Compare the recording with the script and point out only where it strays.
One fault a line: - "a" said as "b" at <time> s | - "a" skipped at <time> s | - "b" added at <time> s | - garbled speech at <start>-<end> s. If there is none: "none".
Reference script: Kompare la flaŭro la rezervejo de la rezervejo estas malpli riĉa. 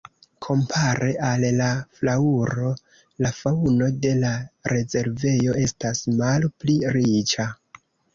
- "al" added at 1.2 s
- "rezervejo" said as "faŭno" at 3.4 s